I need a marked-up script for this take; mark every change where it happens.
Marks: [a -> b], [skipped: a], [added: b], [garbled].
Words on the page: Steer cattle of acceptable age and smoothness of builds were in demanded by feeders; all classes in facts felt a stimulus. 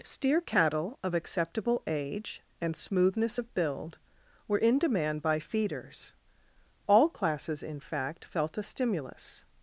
Steer cattle of acceptable age and smoothness of [builds -> build] were in [demanded -> demand] by feeders; all classes in [facts -> fact] felt a stimulus.